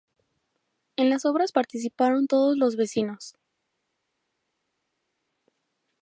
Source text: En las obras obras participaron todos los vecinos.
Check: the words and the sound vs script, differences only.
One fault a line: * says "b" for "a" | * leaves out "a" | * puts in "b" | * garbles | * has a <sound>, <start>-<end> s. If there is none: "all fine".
* leaves out "obras"